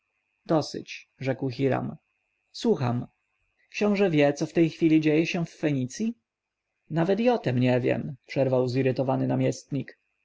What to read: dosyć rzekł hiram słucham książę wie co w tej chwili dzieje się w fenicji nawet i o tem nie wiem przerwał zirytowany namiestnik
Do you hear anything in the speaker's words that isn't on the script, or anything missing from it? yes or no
no